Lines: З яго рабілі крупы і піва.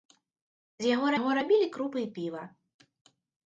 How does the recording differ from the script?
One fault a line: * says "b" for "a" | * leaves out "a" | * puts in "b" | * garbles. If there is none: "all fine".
* puts in "яго"